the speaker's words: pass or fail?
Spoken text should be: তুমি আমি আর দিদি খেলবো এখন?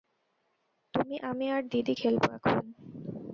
pass